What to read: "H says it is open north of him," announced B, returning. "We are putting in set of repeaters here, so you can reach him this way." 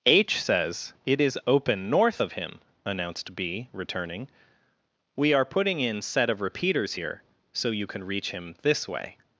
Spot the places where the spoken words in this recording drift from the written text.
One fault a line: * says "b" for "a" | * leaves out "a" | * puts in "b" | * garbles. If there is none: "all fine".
all fine